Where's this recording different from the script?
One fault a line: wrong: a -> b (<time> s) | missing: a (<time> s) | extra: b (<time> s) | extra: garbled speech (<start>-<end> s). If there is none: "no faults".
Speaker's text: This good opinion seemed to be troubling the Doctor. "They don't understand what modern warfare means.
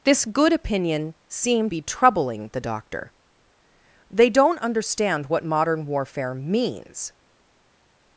missing: to (1.7 s)